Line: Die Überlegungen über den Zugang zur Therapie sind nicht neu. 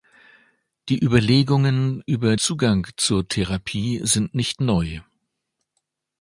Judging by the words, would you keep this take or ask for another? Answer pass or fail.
fail